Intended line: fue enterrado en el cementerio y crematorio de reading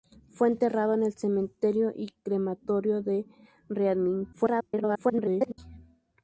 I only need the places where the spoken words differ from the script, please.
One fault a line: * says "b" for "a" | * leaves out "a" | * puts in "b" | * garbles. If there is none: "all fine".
* garbles